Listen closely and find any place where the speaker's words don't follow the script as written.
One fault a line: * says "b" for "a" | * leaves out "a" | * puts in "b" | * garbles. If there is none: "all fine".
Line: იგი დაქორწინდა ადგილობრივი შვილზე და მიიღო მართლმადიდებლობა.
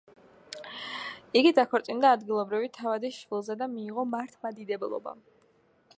* puts in "თავადის"